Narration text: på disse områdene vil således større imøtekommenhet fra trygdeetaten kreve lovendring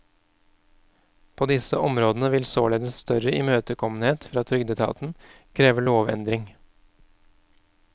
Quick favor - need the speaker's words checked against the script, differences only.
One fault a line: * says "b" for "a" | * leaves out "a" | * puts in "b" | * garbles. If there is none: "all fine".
all fine